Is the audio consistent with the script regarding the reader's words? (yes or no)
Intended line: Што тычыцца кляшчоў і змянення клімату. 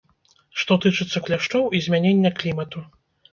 yes